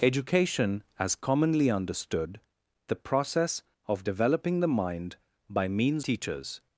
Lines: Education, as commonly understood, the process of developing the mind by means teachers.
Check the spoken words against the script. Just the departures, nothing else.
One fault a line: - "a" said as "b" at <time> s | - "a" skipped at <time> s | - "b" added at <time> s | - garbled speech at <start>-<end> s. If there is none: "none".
none